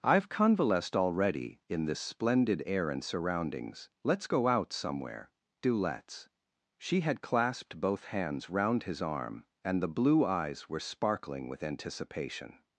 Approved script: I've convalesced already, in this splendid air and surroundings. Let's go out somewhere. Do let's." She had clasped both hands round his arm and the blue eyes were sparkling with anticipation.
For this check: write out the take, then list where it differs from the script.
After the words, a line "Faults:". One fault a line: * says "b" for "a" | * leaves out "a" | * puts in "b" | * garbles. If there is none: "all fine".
I've convalesced already, in this splendid air and surroundings. Let's go out somewhere. Do let's." She had clasped both hands round his arm and the blue eyes were sparkling with anticipation.
Faults:
all fine